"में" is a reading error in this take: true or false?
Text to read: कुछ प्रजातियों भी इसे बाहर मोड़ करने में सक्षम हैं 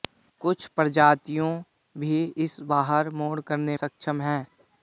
true